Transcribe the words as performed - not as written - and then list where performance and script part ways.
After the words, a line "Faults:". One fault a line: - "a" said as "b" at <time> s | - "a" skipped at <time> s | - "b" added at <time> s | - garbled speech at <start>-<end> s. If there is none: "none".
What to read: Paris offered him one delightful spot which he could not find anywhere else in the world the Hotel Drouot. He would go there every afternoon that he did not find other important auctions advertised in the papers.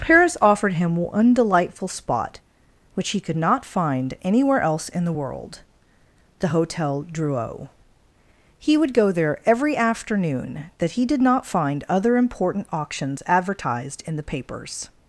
Paris offered him one delightful spot which he could not find anywhere else in the world the Hotel Drouot. He would go there every afternoon that he did not find other important auctions advertised in the papers.
Faults:
none